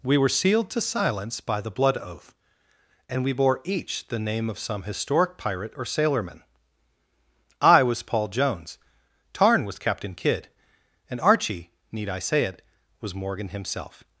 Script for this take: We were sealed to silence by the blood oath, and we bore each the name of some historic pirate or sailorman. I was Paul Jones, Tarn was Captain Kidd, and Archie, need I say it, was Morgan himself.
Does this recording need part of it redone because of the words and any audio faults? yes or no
no